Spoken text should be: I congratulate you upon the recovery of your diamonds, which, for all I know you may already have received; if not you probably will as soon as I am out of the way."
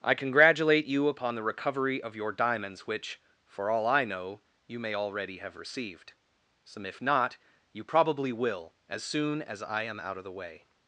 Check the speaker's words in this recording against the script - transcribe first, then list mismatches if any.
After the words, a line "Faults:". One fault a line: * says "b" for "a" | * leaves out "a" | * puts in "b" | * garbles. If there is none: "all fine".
I congratulate you upon the recovery of your diamonds, which, for all I know you may already have received; some if not you probably will as soon as I am out of the way."
Faults:
* puts in "some"